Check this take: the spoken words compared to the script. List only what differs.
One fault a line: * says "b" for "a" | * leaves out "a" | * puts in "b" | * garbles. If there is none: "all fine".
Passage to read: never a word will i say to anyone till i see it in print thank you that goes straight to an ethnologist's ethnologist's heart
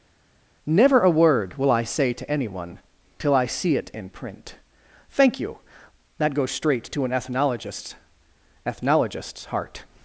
all fine